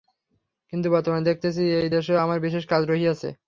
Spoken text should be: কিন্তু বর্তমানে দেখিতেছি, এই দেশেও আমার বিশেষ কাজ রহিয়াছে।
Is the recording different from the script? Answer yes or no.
no